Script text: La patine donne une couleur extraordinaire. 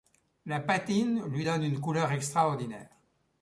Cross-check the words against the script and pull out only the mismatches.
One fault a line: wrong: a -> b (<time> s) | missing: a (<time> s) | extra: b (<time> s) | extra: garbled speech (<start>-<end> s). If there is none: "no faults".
extra: lui (1.3 s)